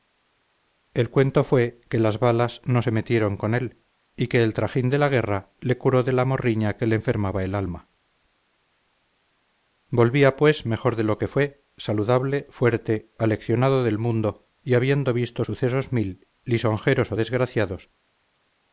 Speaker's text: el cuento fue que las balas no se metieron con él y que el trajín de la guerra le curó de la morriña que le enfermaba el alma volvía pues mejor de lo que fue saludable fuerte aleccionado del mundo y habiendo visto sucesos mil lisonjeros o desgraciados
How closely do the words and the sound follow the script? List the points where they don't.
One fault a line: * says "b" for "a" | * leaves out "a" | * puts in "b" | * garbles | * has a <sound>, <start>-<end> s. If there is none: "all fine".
all fine